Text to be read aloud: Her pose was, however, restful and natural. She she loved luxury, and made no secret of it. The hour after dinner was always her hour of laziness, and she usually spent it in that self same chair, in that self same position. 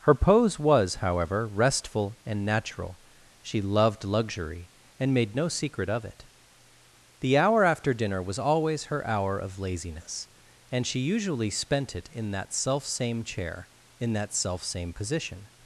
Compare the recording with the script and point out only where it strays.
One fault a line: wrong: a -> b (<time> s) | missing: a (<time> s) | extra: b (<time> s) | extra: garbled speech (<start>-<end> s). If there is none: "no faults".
missing: she (3.6 s)